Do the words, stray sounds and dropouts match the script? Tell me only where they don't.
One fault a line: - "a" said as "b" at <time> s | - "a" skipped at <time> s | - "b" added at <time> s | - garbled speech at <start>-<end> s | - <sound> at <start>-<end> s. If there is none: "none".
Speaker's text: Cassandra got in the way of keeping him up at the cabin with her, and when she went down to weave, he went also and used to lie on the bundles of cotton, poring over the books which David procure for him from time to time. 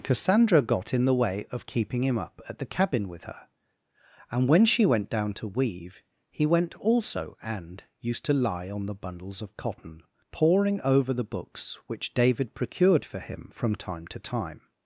- "procure" said as "procured" at 12.5 s